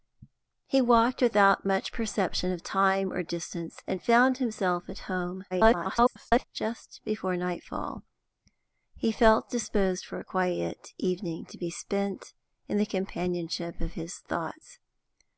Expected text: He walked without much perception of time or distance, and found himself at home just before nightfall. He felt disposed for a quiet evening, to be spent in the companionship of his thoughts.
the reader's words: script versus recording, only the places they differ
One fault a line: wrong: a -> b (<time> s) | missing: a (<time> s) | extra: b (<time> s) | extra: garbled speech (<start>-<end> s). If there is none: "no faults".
extra: garbled speech (5.5-6.4 s)